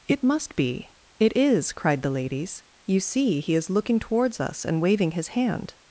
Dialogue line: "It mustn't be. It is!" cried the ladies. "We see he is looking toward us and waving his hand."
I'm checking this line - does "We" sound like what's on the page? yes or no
no